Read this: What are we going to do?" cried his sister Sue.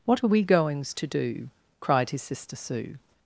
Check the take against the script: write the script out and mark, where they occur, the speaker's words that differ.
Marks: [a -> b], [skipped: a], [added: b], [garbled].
What are we [going -> goings] to do?" cried his sister Sue.